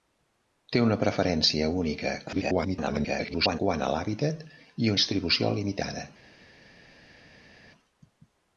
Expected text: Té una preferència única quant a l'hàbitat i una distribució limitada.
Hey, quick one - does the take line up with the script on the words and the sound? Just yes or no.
no